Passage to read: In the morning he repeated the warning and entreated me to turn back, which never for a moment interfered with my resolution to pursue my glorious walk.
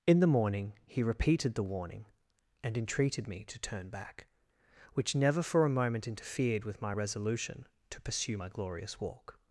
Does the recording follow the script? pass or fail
pass